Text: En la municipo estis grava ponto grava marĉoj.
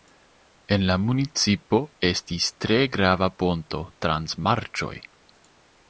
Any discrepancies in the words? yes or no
yes